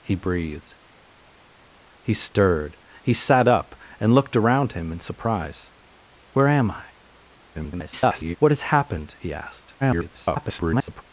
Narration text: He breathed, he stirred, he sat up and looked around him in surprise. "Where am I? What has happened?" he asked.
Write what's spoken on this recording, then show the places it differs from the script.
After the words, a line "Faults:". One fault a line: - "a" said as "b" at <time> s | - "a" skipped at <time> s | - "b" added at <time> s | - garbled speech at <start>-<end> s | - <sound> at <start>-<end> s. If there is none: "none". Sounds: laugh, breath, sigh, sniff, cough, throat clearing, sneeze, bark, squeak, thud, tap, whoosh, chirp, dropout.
He breathed, he stirred, he sat up and looked around him in surprise. "Where am I? [garbled] What has happened?" he asked. [garbled]
Faults:
- garbled speech at 7.5-8.4 s
- garbled speech at 9.8-11.0 s